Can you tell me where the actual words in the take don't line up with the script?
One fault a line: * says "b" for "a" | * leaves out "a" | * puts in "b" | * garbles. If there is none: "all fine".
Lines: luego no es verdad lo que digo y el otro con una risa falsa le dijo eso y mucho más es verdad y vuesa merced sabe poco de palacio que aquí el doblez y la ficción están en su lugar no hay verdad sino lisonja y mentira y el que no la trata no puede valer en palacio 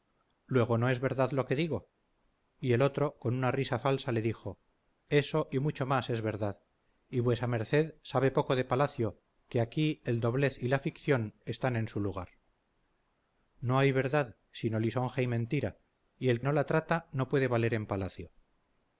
* leaves out "que"